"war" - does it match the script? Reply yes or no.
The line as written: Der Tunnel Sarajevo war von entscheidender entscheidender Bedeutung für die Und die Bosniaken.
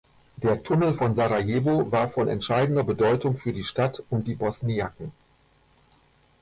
yes